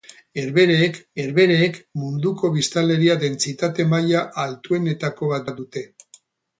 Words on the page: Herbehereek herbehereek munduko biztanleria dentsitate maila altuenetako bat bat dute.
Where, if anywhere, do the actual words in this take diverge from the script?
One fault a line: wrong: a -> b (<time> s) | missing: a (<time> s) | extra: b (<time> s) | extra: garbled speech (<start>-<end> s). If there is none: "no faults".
no faults